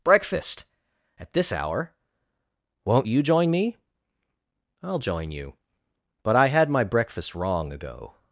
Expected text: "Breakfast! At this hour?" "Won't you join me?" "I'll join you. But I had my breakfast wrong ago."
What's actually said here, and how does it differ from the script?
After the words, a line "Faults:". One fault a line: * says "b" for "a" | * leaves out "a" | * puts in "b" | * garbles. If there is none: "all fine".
"Breakfast! At this hour?" "Won't you join me?" "I'll join you. But I had my breakfast wrong ago."
Faults:
all fine